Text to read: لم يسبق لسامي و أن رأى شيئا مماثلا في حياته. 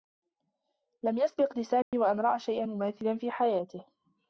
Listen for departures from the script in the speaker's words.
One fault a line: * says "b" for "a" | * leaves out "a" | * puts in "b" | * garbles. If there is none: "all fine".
all fine